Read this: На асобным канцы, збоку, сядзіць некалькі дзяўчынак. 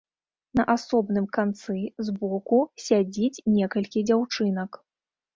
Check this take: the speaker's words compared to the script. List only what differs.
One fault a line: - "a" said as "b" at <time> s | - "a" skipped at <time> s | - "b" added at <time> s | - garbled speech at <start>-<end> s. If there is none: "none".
none